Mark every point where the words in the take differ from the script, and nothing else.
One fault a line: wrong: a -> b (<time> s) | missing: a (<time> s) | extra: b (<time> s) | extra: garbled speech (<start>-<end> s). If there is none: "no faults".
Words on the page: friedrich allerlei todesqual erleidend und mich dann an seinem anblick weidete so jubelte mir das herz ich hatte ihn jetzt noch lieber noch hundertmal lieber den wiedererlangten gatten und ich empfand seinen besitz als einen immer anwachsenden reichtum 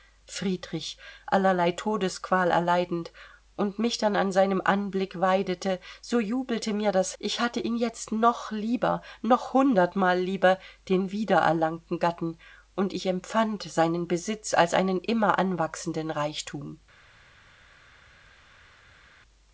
missing: herz (7.2 s)